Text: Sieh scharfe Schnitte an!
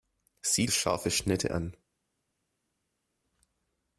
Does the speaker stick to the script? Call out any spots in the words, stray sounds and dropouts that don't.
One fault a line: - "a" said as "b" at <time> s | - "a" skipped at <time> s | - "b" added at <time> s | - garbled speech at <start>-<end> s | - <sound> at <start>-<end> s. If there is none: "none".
none